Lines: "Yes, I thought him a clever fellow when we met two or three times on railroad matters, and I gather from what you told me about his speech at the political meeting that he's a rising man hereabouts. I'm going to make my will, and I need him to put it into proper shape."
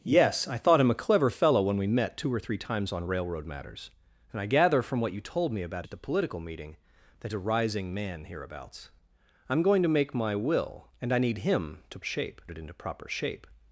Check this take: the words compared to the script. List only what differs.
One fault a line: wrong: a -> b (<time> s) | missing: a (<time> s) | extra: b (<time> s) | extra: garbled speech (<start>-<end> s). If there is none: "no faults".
missing: his speech (5.9 s)
missing: he's (7.3 s)
wrong: put -> shape (12.0 s)